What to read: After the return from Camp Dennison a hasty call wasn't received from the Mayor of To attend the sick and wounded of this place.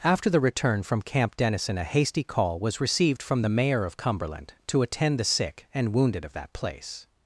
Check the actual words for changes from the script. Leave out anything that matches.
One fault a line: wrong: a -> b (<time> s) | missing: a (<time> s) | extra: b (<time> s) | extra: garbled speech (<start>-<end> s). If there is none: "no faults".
wrong: wasn't -> was (2.6 s)
extra: Cumberland (4.0 s)
wrong: this -> that (6.3 s)